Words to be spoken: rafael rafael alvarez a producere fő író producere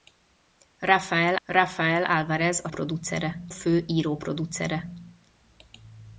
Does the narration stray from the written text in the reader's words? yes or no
no